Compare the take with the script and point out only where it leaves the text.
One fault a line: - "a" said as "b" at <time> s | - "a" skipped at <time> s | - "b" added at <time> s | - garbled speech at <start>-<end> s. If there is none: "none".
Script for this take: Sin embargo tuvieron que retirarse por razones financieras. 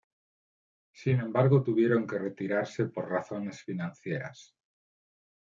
none